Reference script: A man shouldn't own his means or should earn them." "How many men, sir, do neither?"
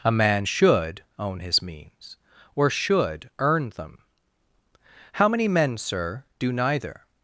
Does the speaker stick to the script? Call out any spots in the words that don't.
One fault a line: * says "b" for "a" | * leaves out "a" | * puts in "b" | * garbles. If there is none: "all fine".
* says "should" for "shouldn't"